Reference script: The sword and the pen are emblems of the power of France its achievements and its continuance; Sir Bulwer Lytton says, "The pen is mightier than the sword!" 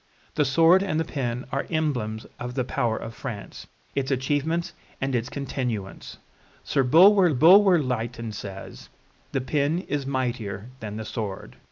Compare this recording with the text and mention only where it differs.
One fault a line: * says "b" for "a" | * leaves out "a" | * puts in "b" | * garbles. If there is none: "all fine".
* puts in "Bulwer"